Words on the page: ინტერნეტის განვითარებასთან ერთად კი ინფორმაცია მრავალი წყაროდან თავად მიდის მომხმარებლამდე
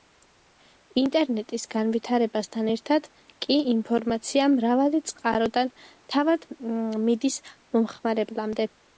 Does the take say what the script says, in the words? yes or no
yes